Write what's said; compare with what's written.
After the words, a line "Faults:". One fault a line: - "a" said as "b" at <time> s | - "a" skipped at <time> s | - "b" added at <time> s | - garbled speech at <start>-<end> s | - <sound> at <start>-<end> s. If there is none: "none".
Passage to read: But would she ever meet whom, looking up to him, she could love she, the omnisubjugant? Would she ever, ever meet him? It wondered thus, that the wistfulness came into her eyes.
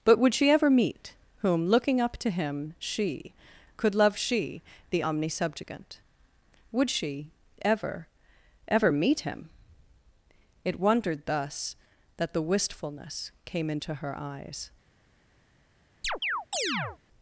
But would she ever meet whom, looking up to him, she could love she, the omnisubjugant? Would she ever, ever meet him? It wondered thus, that the wistfulness came into her eyes.
Faults:
- chirp at 16.0-17.0 s